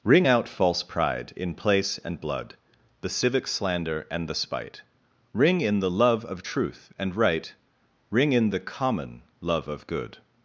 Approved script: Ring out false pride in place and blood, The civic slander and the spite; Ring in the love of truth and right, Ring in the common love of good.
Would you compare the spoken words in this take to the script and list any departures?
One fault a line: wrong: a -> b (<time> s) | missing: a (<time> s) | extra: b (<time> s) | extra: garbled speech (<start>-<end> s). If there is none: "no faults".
no faults